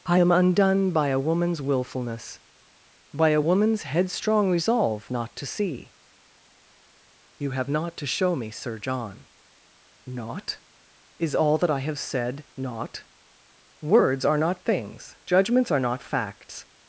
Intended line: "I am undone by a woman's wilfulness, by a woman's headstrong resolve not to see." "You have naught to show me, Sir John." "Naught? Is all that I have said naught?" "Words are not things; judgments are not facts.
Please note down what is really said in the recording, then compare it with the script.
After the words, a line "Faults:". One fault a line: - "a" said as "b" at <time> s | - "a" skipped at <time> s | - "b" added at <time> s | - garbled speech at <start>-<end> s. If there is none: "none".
"I am undone by a woman's wilfulness, by a woman's headstrong resolve not to see." "You have naught to show me, Sir John." "Naught? Is all that I have said naught?" "Words are not things; judgments are not facts.
Faults:
none